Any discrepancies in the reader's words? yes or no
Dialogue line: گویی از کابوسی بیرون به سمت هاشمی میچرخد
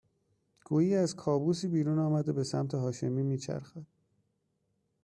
yes